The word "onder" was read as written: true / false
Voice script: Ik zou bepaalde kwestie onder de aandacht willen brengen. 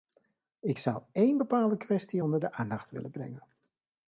true